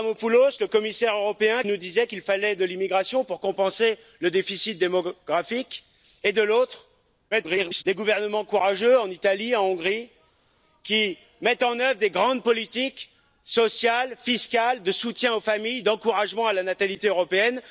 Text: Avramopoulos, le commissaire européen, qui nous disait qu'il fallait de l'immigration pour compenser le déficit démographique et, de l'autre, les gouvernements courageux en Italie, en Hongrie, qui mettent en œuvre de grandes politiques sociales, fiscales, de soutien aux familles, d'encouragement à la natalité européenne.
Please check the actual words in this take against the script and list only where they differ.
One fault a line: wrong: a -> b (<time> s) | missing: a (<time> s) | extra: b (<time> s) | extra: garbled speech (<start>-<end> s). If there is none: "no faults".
missing: qui (1.6 s)
extra: garbled speech (7.3-7.8 s)